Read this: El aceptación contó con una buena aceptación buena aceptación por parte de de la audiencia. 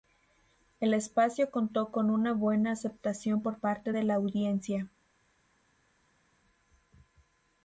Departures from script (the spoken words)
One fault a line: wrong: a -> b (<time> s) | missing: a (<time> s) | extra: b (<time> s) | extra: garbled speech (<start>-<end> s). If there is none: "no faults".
wrong: aceptación -> espacio (0.9 s)
missing: buena aceptación (3.4 s)
missing: de (4.0 s)